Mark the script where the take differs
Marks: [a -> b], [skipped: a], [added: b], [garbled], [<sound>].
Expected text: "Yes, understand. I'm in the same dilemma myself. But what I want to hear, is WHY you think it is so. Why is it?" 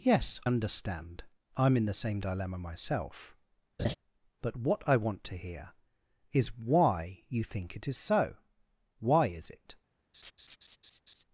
"Yes, understand. I'm in the same dilemma myself. [laugh] But what I want to hear, is WHY you think it is so. Why is it?" [laugh]